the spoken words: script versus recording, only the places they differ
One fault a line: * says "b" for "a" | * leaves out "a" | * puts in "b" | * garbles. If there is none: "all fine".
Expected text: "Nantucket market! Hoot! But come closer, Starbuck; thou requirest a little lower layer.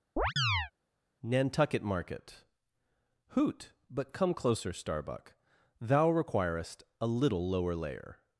all fine